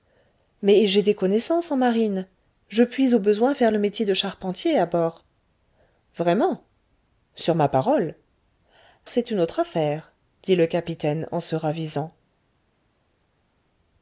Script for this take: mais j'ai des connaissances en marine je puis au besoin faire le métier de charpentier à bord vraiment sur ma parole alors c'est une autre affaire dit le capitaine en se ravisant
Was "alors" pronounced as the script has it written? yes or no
no